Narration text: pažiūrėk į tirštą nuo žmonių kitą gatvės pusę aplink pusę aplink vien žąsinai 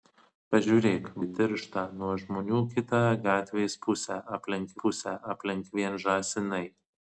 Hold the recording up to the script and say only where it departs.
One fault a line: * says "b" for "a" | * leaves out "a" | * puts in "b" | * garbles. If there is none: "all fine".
all fine